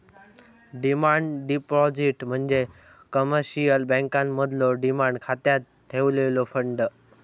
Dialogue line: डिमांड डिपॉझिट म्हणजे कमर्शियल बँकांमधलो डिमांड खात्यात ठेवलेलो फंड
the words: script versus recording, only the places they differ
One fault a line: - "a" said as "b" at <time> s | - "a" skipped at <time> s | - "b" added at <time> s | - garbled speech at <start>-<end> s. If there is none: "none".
none